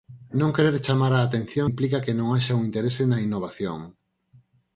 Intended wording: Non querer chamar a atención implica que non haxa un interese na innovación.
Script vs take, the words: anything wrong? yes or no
no